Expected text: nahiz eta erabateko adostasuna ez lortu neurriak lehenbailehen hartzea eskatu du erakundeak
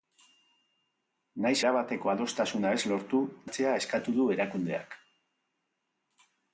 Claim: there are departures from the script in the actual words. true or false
true